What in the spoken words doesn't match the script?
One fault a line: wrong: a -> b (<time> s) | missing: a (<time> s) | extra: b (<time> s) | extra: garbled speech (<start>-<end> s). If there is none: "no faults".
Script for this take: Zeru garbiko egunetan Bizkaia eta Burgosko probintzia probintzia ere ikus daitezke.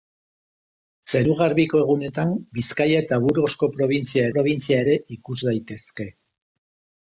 no faults